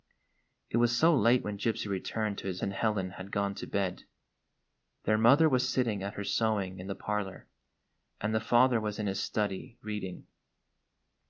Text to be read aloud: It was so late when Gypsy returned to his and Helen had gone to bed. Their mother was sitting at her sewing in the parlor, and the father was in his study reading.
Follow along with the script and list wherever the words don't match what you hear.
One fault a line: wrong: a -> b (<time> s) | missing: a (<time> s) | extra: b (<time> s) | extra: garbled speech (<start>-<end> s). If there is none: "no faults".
no faults